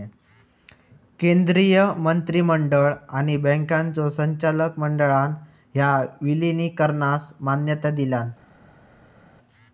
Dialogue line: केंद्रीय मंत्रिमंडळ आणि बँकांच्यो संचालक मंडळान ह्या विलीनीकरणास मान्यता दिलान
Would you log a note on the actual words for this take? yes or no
no